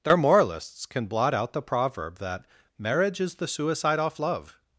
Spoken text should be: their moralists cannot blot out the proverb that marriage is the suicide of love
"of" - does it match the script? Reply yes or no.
no